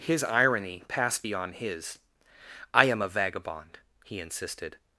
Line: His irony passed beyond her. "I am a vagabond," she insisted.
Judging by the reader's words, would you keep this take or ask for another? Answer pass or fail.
fail